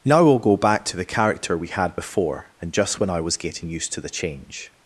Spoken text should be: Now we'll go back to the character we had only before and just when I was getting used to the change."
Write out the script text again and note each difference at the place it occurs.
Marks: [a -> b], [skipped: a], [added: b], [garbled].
Now we'll go back to the character we had [skipped: only] before and just when I was getting used to the change."